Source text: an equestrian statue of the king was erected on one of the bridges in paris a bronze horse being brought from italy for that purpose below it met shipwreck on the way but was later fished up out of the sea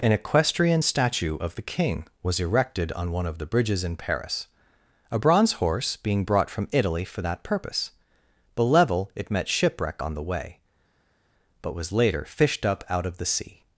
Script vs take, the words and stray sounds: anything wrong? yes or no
no